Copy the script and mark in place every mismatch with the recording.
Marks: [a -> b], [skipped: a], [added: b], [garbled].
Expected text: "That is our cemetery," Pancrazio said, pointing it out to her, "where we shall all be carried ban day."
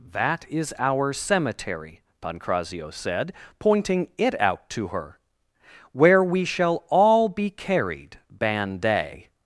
"That is our cemetery," Pancrazio said, pointing it out to her, "where we shall all be carried ban day."